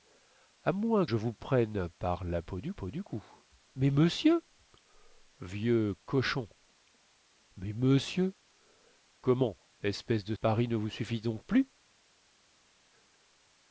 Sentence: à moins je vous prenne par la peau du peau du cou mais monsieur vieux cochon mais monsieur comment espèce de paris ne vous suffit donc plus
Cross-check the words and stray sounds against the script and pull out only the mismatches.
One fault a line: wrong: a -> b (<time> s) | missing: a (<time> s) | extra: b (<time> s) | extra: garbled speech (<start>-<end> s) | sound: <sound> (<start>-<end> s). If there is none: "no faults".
no faults